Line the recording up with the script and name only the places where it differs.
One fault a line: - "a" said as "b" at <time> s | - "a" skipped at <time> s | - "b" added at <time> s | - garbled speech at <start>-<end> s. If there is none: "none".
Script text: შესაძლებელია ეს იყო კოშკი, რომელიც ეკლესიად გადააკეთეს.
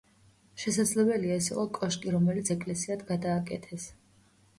none